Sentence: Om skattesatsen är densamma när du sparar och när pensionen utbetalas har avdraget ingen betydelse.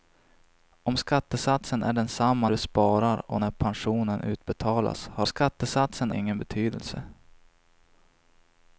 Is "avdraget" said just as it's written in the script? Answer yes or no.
no